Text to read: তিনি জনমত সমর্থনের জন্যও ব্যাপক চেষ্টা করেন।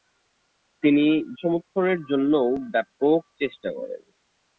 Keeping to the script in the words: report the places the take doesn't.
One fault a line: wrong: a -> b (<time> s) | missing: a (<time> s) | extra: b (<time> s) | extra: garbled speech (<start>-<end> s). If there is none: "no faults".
missing: জনমত (1.1 s)